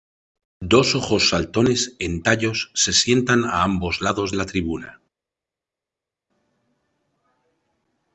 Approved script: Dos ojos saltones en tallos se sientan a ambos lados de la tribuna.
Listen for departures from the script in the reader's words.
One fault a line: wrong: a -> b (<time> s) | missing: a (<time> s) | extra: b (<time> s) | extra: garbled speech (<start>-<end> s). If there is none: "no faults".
missing: de (4.3 s)